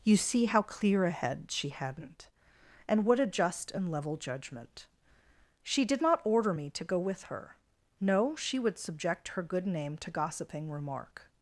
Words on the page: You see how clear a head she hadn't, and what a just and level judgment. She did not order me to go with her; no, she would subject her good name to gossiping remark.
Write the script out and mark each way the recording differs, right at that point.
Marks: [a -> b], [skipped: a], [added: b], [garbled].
You see how clear a head she hadn't, and what a just and level judgment. She did not order me to go with her; no, she would subject her good name to gossiping remark.